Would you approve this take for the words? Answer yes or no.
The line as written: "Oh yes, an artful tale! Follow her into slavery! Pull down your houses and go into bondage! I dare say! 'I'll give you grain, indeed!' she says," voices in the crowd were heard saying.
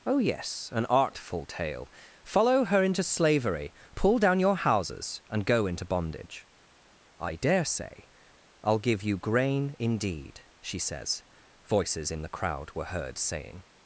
yes